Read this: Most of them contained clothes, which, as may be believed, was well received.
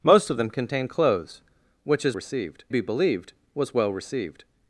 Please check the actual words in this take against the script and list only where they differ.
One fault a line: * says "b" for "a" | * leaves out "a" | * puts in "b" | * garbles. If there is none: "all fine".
* says "received" for "may"